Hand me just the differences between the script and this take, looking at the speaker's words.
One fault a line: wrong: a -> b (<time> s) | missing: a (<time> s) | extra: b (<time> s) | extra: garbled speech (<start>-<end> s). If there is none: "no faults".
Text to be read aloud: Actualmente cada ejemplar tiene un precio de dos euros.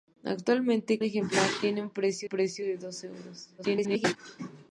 missing: cada (1.0 s)
extra: precio (2.2 s)
extra: garbled speech (3.6-4.2 s)